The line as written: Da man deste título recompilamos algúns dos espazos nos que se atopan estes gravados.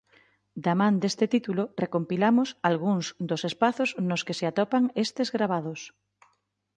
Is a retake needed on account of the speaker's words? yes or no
no